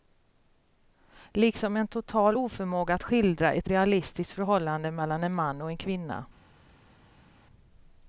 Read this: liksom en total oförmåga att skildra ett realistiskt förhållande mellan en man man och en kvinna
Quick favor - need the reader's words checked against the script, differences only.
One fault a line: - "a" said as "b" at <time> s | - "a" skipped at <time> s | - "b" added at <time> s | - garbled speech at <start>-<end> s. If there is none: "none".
- "man" skipped at 5.6 s